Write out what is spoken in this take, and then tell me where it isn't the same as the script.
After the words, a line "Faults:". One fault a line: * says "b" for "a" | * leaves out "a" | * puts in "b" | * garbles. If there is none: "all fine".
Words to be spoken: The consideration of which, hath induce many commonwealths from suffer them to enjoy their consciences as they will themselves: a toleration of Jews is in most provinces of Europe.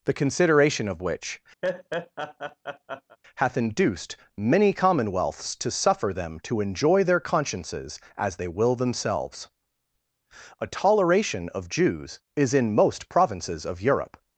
The consideration of which, hath induced many commonwealths to suffer them to enjoy their consciences as they will themselves: a toleration of Jews is in most provinces of Europe.
Faults:
* says "induced" for "induce"
* says "to" for "from"